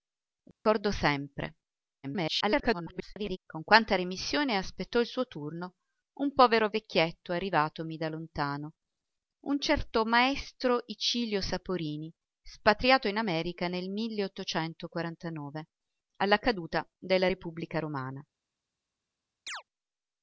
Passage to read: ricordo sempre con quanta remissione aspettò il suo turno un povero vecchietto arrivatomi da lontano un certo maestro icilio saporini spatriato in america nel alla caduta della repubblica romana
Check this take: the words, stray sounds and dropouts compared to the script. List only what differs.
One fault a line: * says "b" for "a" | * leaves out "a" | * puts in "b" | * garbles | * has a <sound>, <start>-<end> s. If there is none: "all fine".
* has a dropout, 0.5-0.7 s
* garbles
* has a chirp, 19.5-19.6 s